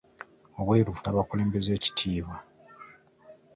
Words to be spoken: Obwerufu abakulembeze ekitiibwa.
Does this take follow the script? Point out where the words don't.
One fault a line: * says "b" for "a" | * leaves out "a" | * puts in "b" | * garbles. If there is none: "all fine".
all fine